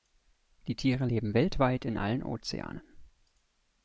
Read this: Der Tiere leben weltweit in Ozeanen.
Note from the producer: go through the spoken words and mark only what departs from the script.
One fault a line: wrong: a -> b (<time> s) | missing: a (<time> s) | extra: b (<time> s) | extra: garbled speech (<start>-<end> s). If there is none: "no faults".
wrong: Der -> Die (0.7 s)
extra: allen (1.9 s)